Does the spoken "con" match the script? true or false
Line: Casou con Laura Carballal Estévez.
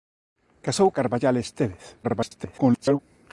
false